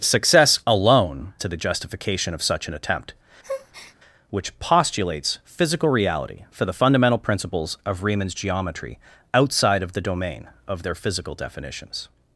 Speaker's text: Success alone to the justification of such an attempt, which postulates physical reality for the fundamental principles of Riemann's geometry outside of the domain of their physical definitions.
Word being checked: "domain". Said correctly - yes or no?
yes